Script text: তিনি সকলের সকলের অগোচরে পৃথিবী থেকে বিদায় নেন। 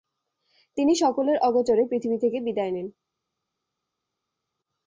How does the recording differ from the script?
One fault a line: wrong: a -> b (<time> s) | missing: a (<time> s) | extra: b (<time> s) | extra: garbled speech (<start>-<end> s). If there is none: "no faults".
missing: সকলের (1.4 s)